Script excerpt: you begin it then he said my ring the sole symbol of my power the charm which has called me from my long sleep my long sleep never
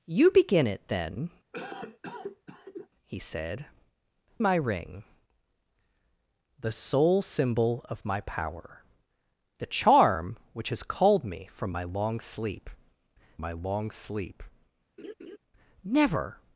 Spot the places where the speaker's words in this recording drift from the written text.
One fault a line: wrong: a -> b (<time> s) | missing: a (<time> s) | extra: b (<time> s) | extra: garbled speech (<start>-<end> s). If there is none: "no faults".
no faults